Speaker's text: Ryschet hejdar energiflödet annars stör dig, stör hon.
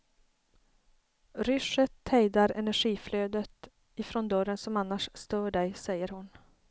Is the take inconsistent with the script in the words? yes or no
yes